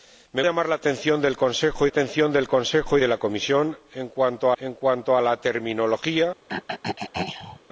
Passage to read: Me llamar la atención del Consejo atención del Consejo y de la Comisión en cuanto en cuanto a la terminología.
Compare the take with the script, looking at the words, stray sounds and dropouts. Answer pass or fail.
fail